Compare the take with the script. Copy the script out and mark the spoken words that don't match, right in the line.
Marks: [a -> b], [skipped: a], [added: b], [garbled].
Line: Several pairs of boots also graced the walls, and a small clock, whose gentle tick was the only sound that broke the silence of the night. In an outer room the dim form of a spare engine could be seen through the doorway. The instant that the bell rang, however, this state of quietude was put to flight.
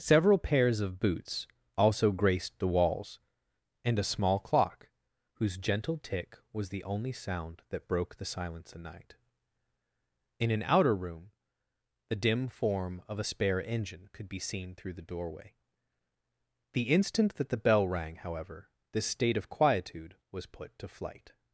Several pairs of boots also graced the walls, and a small clock, whose gentle tick was the only sound that broke the silence [skipped: of] the night. In an outer room the dim form of a spare engine could be seen through the doorway. The instant that the bell rang, however, this state of quietude was put to flight.